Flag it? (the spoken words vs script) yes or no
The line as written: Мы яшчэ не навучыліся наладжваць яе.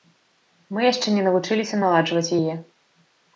no